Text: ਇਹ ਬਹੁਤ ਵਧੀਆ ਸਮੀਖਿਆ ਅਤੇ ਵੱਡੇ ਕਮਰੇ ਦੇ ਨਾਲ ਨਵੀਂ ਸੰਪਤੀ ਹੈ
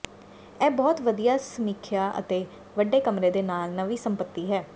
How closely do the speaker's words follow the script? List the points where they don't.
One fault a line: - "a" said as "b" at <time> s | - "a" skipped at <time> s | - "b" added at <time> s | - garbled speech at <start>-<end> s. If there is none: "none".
none